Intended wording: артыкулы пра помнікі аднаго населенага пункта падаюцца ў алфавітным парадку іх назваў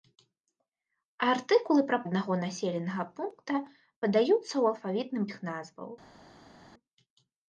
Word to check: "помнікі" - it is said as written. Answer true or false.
false